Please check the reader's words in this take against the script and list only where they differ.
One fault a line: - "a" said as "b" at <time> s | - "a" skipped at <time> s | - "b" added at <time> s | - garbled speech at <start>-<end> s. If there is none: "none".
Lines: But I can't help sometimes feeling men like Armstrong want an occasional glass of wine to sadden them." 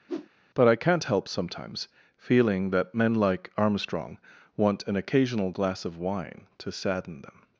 - "that" added at 2.7 s